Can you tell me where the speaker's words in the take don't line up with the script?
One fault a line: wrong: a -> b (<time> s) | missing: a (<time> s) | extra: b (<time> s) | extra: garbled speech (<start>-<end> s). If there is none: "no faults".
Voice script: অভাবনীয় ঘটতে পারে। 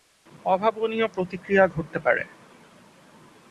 extra: প্রতিক্রিয়া (1.1 s)